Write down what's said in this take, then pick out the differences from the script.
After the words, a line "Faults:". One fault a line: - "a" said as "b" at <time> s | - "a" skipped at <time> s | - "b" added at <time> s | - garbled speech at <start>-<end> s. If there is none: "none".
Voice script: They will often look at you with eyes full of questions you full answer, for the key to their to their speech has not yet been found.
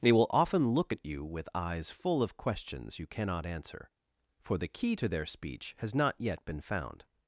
They will often look at you with eyes full of questions you cannot answer, for the key to their speech has not yet been found.
Faults:
- "full" said as "cannot" at 3.1 s
- "to their" skipped at 5.3 s